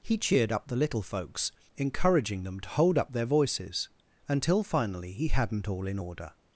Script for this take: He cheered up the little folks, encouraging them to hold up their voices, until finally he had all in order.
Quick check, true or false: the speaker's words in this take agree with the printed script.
false